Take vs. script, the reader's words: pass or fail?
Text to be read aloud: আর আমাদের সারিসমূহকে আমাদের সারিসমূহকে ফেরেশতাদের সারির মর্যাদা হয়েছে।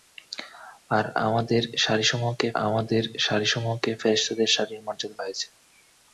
pass